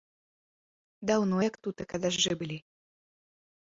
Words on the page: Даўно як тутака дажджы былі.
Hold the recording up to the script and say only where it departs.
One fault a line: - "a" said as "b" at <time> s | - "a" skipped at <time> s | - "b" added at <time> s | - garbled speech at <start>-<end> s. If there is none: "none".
none